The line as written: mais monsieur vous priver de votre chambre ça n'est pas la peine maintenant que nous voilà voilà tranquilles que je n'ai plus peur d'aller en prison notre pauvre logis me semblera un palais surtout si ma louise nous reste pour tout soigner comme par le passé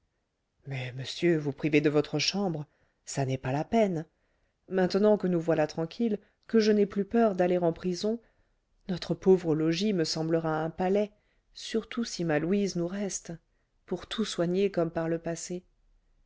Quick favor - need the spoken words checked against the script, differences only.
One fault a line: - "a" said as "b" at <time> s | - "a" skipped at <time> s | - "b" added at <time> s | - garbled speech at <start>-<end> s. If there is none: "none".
- "voilà" skipped at 5.7 s